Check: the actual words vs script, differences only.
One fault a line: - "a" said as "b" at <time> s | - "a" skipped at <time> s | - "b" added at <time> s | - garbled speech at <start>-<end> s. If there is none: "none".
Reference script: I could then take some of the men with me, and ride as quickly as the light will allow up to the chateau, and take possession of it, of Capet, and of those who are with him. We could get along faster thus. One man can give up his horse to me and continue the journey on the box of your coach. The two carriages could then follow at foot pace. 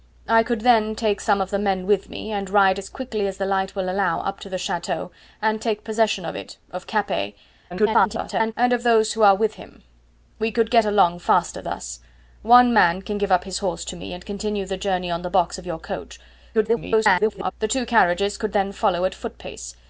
- garbled speech at 7.7-8.5 s
- garbled speech at 16.5-17.5 s